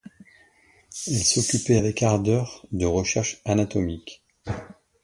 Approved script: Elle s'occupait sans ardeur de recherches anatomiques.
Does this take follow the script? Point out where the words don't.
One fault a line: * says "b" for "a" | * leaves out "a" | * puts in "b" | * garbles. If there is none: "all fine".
* says "avec" for "sans"